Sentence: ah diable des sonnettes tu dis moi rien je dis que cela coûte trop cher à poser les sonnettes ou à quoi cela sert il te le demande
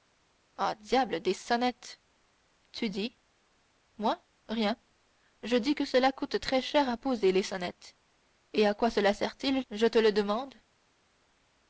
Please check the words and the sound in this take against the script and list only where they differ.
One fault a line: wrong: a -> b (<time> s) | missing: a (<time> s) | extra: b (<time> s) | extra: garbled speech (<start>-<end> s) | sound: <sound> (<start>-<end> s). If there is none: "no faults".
wrong: trop -> très (6.4 s)
wrong: ou -> et (8.5 s)
extra: je (9.7 s)